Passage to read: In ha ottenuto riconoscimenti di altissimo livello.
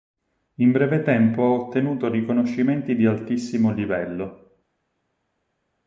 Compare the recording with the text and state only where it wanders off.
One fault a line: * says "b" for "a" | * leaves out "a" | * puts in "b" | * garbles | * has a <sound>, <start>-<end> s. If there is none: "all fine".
* puts in "breve tempo"